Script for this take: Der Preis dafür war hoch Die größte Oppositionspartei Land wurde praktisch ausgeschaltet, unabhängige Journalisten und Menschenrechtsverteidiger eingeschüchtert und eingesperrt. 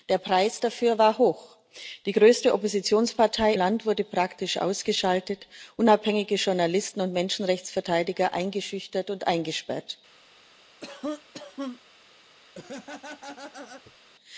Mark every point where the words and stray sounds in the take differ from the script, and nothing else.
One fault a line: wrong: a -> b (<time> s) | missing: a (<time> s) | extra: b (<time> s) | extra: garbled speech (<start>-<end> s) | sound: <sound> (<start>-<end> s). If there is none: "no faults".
sound: cough (10.8-11.8 s)
sound: laugh (12.6-14.0 s)